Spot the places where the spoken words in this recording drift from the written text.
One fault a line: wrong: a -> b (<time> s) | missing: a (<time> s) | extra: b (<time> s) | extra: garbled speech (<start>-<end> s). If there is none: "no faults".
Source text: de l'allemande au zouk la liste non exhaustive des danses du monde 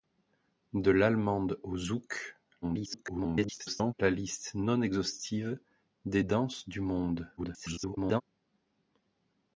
extra: garbled speech (2.6-3.9 s)
extra: garbled speech (7.4-8.2 s)